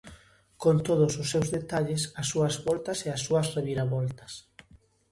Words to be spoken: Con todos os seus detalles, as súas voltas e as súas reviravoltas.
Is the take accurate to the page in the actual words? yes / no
yes